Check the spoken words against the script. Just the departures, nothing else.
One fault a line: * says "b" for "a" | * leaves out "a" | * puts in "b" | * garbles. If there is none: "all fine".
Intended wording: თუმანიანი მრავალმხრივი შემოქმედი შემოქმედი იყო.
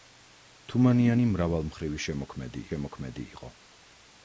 all fine